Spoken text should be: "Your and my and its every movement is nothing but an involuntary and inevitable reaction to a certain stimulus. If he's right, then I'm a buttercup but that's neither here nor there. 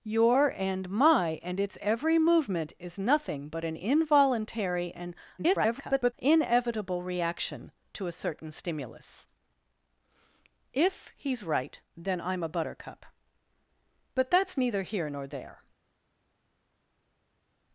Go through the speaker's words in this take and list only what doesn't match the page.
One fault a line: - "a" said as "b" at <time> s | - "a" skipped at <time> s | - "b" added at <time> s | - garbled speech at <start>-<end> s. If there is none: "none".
- garbled speech at 5.4-6.1 s